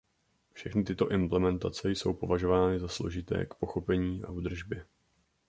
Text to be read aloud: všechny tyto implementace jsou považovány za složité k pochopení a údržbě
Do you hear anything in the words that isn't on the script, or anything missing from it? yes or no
no